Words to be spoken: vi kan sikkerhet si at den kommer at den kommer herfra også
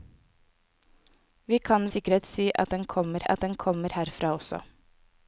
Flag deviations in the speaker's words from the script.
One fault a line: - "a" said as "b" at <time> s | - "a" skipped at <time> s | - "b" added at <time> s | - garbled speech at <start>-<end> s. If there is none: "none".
none